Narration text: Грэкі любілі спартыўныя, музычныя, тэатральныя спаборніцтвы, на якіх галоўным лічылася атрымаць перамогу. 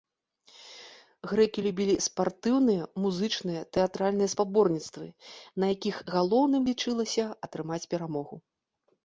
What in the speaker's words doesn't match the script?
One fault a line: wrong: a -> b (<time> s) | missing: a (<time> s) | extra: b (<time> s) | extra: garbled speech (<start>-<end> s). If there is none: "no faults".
no faults